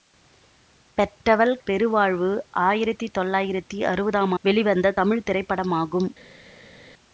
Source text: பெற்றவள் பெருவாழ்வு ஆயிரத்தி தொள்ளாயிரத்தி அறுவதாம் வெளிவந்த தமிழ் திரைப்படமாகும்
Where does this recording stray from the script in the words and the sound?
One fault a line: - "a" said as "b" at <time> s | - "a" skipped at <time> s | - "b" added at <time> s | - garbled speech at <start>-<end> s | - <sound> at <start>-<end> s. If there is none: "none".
none